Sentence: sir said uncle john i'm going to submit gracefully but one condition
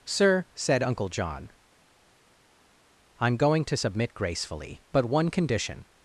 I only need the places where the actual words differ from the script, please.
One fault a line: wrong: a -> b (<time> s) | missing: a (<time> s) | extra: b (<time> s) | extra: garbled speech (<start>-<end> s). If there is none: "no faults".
no faults